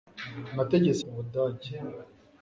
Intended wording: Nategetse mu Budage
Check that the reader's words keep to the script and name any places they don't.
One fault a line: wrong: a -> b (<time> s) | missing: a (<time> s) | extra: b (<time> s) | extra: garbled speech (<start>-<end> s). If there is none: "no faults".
no faults